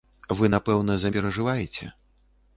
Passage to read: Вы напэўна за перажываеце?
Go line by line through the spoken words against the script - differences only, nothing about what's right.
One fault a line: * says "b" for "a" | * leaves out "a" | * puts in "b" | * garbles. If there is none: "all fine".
all fine